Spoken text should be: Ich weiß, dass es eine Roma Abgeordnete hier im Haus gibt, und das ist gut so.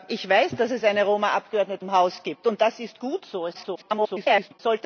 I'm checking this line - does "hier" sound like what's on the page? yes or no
no